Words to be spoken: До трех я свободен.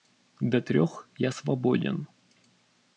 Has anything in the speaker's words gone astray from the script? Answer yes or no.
no